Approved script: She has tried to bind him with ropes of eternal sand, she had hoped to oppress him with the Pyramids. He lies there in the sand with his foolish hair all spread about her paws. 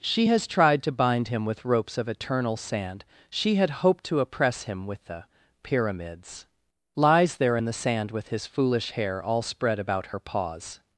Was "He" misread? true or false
true